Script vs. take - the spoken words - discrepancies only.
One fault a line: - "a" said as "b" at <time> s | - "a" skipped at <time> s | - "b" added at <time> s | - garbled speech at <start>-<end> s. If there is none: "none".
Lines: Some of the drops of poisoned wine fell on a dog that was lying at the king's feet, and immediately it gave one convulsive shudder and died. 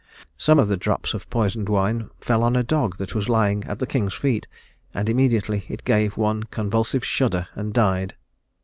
none